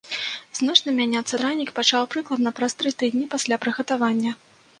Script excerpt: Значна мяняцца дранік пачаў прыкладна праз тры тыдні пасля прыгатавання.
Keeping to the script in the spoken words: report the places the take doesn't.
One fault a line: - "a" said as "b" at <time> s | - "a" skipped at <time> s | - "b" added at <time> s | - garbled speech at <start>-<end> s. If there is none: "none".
none